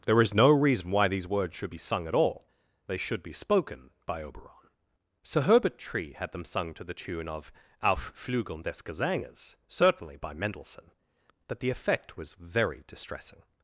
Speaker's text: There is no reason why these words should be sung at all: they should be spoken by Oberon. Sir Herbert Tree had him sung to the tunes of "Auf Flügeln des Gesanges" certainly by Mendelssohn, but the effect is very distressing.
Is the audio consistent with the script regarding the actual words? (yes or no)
no